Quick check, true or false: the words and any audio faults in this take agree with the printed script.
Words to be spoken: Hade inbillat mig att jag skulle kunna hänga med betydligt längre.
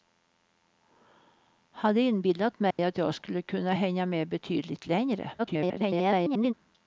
false